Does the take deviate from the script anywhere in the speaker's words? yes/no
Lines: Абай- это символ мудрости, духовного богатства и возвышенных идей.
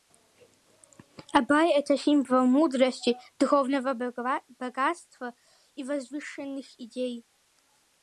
no